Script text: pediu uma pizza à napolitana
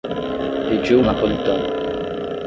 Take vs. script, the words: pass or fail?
fail